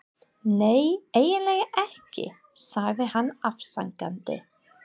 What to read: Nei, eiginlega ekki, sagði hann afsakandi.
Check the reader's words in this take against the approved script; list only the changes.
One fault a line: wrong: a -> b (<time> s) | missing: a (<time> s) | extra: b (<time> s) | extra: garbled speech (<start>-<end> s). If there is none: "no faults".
no faults